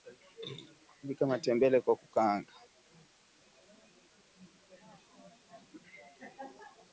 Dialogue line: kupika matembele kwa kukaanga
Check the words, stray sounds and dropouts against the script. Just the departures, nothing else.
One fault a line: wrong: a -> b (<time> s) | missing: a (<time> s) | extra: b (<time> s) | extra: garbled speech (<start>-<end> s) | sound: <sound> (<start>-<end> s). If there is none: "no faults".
no faults